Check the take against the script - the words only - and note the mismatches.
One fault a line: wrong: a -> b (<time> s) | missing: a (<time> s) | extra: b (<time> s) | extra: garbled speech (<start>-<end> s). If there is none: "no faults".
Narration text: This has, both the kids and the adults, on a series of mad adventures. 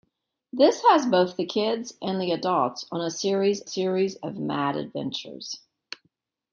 extra: series (3.6 s)